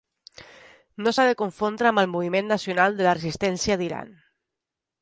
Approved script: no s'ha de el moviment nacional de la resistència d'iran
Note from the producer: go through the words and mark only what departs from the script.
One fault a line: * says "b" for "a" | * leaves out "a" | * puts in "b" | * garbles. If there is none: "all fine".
* puts in "confondre amb"